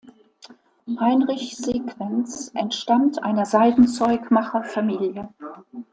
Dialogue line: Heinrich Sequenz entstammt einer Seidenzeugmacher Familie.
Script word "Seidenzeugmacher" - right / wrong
right